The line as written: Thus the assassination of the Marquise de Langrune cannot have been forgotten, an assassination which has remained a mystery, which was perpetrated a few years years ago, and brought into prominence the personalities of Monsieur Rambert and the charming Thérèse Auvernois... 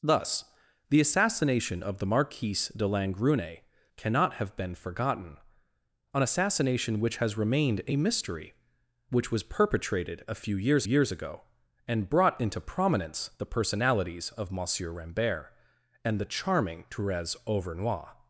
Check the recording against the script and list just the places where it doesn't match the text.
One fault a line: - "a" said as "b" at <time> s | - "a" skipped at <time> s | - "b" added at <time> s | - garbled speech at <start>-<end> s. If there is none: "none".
none